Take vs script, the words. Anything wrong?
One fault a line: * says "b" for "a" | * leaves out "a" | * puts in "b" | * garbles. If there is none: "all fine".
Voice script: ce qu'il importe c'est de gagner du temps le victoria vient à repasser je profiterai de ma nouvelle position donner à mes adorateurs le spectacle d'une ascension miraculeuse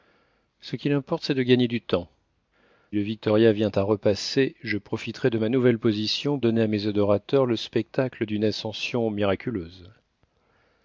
all fine